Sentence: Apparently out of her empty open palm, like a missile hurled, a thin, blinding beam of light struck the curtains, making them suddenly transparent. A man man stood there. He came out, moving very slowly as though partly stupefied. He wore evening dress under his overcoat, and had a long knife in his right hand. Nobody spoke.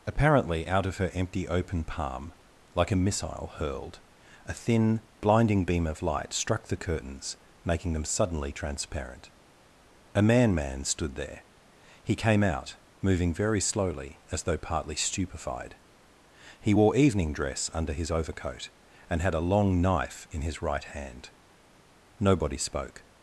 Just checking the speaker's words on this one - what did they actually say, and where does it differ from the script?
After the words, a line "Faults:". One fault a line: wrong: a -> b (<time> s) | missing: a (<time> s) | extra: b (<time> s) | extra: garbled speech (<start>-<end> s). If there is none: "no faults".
Apparently out of her empty open palm, like a missile hurled, a thin, blinding beam of light struck the curtains, making them suddenly transparent. A man man stood there. He came out, moving very slowly as though partly stupefied. He wore evening dress under his overcoat, and had a long knife in his right hand. Nobody spoke.
Faults:
no faults